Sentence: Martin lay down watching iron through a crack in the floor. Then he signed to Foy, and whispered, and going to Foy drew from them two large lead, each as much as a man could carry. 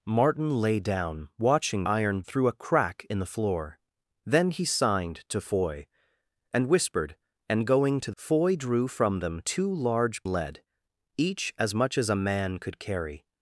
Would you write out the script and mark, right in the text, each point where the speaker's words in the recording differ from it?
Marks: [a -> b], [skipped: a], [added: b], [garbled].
Martin lay down watching iron through a crack in the floor. Then he signed to Foy, and whispered, and going to Foy drew from them two large lead, each as much as a man could carry.